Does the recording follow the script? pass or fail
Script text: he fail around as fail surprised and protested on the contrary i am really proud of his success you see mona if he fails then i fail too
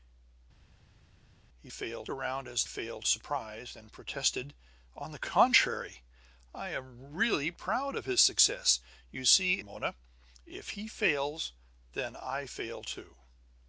pass